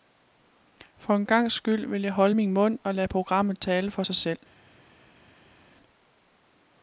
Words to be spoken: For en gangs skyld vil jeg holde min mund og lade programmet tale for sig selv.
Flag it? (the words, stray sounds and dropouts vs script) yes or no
no